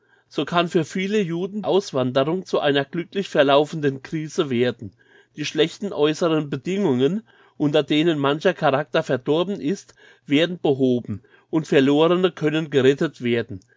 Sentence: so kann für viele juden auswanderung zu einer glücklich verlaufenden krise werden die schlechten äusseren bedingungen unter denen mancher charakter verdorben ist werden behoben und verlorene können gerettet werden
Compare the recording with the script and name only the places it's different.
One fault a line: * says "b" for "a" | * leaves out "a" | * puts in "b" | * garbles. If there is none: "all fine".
all fine